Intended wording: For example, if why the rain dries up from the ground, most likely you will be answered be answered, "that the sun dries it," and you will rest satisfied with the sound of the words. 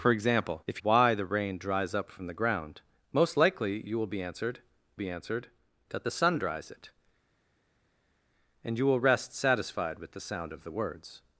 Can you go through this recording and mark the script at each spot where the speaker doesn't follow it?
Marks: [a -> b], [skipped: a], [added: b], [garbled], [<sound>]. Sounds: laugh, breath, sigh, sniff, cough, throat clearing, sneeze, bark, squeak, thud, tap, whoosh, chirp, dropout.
For example, if why the rain dries up from the ground, most likely you will be answered be answered, "that the sun dries it," and you will rest satisfied with the sound of the words.